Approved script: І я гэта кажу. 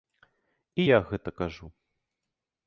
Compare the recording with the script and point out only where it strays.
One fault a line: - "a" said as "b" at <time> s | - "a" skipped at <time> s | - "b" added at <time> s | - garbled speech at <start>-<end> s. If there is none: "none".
none